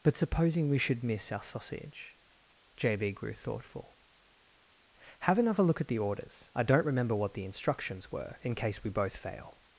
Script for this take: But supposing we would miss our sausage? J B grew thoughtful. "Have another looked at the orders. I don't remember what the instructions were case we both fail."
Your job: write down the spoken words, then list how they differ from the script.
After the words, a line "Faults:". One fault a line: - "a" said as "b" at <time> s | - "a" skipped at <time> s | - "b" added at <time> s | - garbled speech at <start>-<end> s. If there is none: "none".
But supposing we should miss our sausage? J B grew thoughtful. "Have another look at the orders. I don't remember what the instructions were in case we both fail."
Faults:
- "would" said as "should" at 0.8 s
- "looked" said as "look" at 5.6 s
- "in" added at 8.4 s